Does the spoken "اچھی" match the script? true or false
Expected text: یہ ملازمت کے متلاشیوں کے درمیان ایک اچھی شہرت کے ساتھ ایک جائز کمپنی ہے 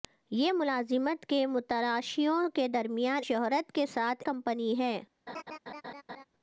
false